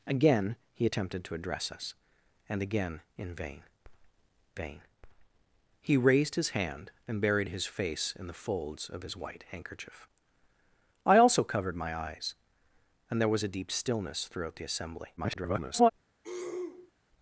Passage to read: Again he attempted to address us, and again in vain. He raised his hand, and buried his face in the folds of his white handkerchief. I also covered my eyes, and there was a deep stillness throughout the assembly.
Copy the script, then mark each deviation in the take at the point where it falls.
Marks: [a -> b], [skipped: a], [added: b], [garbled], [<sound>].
Again he attempted to address us, and again in vain. [added: vain] He raised his hand, and buried his face in the folds of his white handkerchief. I also covered my eyes, and there was a deep stillness throughout the assembly. [garbled] [throat clearing]